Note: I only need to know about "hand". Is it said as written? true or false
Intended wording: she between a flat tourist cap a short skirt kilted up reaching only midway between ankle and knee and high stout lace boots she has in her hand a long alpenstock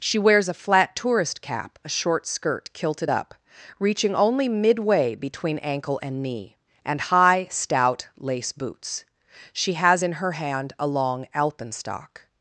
true